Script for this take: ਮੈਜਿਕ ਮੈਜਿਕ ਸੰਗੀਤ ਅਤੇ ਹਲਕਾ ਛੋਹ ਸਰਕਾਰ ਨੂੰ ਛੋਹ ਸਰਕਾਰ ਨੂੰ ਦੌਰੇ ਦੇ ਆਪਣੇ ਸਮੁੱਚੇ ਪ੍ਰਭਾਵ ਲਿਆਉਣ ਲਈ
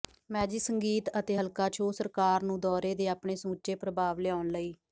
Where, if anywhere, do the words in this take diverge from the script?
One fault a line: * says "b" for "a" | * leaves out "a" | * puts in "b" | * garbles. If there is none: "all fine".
* leaves out "ਮੈਜਿਕ"
* leaves out "ਛੋਹ ਸਰਕਾਰ ਨੂੰ"